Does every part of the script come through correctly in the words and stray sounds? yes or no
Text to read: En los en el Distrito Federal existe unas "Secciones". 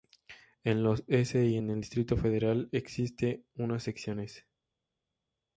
no